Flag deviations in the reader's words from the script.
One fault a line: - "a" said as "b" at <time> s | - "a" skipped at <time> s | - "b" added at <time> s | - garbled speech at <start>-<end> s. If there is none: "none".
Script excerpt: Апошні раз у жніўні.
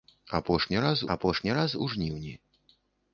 - "апошні раз" added at 1.1 s